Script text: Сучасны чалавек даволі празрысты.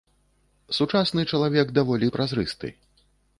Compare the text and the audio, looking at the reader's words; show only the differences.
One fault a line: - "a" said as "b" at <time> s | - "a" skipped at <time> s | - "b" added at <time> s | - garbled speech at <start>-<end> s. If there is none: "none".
none